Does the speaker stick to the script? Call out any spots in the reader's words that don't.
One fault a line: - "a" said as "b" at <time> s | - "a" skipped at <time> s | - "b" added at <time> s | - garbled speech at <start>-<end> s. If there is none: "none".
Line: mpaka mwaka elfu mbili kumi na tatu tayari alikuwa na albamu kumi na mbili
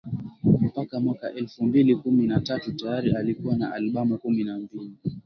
none